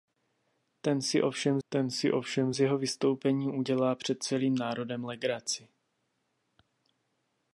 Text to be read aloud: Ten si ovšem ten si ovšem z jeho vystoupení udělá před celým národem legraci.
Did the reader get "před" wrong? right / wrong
right